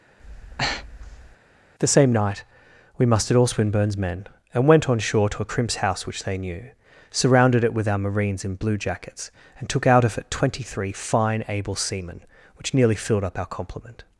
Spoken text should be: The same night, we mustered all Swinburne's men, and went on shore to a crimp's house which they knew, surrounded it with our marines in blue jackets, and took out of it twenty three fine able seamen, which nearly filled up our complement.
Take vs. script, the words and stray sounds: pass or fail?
fail